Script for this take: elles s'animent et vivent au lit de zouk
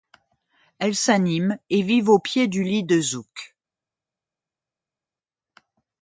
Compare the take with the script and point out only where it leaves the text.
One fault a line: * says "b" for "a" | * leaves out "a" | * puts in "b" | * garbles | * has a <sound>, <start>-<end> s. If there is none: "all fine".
* puts in "pied du"